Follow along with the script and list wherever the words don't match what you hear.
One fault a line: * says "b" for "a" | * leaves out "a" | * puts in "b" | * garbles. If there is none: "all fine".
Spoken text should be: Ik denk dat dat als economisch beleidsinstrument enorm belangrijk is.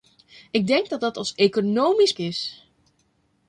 * leaves out "beleidsinstrument enorm belangrijk"